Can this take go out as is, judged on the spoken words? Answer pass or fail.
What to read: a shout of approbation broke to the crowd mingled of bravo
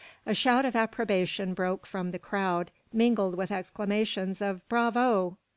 fail